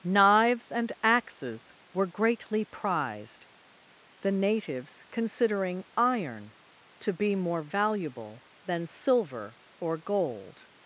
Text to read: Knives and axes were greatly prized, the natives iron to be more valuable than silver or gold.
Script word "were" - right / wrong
right